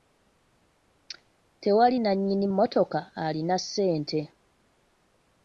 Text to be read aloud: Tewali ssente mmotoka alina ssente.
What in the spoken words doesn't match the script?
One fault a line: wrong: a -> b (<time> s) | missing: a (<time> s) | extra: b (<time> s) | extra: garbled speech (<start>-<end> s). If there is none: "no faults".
wrong: ssente -> nnannyini (2.0 s)